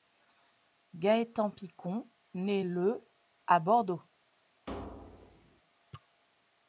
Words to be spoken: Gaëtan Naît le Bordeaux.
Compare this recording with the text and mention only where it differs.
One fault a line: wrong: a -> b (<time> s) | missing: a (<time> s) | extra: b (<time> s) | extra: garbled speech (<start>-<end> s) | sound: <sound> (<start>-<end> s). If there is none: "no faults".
extra: Picon (1.5 s)
extra: à (3.5 s)
sound: thud (4.7-5.6 s)